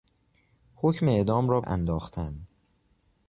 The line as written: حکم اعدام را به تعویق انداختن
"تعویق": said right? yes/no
no